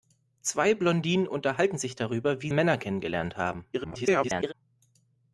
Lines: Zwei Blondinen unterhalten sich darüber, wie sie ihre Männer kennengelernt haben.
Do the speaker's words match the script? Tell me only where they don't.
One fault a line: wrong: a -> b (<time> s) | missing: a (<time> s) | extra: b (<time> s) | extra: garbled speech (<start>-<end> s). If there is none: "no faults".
missing: sie ihre (2.5 s)
extra: garbled speech (3.7-4.5 s)